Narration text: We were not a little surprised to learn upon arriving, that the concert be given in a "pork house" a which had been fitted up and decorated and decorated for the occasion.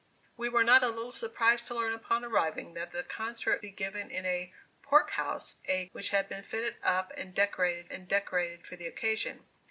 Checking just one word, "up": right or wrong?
right